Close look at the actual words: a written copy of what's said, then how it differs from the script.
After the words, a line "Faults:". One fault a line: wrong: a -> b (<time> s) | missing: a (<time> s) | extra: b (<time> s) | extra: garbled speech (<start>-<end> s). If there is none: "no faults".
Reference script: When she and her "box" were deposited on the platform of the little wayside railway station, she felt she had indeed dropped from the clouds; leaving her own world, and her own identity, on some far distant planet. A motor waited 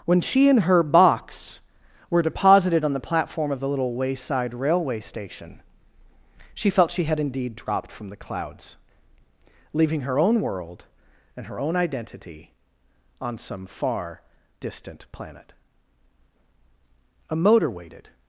When she and her "box" were deposited on the platform of the little wayside railway station, she felt she had indeed dropped from the clouds; leaving her own world, and her own identity, on some far distant planet. A motor waited
Faults:
no faults